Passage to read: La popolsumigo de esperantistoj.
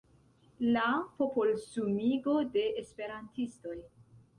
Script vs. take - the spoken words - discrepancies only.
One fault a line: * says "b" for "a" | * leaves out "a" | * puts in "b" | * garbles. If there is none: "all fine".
all fine